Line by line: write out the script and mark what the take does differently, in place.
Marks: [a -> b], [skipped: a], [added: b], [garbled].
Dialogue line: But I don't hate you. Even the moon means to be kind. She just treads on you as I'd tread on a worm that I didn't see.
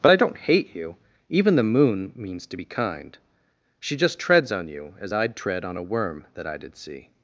But I don't hate you. Even the moon means to be kind. She just treads on you as I'd tread on a worm that I [didn't -> did] see.